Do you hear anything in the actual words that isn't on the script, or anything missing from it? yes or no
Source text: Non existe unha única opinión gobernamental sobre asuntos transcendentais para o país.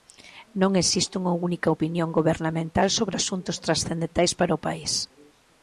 no